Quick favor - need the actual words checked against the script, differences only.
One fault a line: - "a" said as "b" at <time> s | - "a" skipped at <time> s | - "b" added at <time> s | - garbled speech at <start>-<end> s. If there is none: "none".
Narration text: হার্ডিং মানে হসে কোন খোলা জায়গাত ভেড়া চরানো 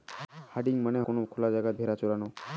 - "হসে" skipped at 1.0 s